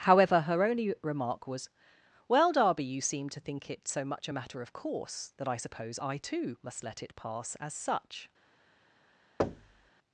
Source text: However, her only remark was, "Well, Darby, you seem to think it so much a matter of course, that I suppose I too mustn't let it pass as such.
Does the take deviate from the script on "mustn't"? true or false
true